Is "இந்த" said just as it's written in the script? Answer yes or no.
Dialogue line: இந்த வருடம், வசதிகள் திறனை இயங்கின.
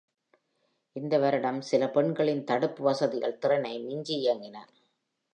yes